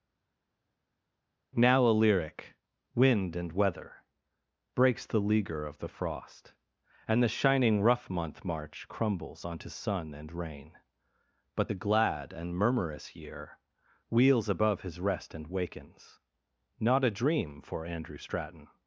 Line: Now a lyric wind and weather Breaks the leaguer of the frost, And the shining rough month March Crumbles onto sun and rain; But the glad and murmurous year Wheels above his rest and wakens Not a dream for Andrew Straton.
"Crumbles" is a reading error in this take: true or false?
false